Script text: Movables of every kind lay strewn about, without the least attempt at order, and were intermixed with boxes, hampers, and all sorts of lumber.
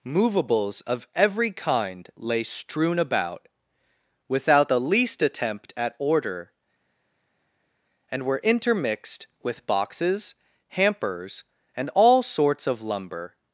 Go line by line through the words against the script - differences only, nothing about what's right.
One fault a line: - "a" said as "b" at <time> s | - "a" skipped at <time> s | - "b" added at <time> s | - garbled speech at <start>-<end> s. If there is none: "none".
none